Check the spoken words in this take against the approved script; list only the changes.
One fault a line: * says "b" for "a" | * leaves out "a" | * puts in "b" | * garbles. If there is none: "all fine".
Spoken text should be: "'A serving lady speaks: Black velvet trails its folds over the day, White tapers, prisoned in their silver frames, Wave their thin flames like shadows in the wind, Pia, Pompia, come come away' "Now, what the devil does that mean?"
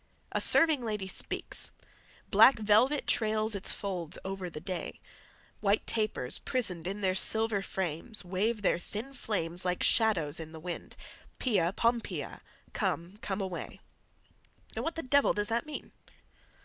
all fine